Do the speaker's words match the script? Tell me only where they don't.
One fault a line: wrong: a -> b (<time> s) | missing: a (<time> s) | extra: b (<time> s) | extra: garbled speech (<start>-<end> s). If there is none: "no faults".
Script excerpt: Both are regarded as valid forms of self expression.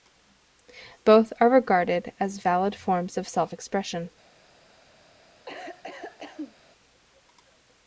no faults